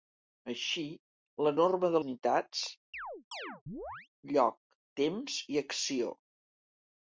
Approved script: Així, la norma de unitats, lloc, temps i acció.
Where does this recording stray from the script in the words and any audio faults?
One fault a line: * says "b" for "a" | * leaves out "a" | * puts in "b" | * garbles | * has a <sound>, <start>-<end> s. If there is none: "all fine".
* has a chirp, 2.9-4.1 s